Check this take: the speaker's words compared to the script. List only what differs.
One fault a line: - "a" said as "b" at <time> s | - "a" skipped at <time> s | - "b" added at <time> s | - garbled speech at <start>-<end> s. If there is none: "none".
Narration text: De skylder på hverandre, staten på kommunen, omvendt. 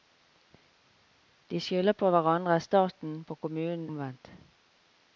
none